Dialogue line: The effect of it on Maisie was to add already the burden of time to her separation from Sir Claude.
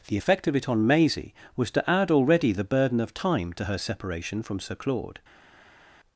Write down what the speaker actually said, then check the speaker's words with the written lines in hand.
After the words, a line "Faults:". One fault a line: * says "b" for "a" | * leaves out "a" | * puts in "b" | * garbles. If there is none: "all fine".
The effect of it on Maisie was to add already the burden of time to her separation from Sir Claude.
Faults:
all fine